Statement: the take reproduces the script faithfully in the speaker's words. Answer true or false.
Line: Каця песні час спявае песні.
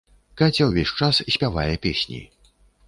false